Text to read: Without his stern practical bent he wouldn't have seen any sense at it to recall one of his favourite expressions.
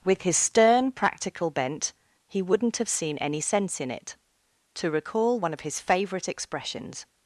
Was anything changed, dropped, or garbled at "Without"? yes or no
yes